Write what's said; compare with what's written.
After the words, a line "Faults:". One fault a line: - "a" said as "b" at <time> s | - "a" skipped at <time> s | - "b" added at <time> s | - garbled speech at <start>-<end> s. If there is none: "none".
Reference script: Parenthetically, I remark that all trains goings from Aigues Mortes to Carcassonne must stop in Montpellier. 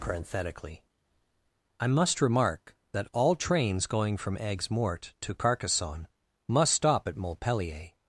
Parenthetically, I must remark that all trains going from Aigues Mortes to Carcassonne must stop at Montpellier.
Faults:
- "must" added at 1.9 s
- "goings" said as "going" at 3.9 s
- "in" said as "at" at 7.1 s